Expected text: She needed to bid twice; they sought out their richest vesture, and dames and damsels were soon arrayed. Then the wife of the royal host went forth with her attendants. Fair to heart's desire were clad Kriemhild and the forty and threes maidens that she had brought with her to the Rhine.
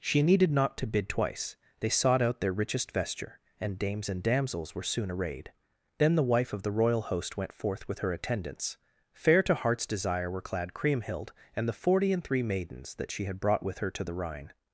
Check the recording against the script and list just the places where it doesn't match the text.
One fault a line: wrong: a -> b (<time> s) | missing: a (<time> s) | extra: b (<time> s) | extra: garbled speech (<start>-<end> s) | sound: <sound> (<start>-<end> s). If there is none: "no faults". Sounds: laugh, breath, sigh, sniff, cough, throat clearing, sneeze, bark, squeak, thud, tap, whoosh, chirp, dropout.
extra: not (0.5 s)
wrong: threes -> three (12.2 s)